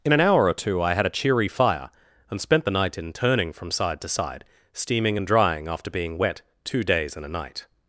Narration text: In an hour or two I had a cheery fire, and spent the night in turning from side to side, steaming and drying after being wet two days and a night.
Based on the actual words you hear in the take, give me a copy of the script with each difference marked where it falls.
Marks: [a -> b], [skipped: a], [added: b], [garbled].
In an hour or two I had a cheery fire, and spent the night in turning from side to side, steaming and drying after being wet two days and a night.